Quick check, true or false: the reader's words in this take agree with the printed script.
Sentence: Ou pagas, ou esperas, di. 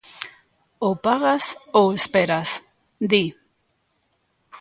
true